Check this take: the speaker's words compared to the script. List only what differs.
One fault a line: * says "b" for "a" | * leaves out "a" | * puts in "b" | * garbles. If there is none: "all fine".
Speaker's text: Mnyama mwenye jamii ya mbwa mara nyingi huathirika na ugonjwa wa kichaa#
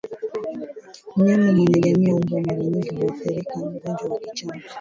all fine